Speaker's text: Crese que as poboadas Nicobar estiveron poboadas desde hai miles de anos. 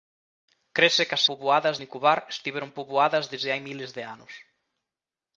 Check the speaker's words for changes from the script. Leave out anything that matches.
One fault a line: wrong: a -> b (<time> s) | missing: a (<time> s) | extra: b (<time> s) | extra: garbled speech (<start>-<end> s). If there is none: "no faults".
no faults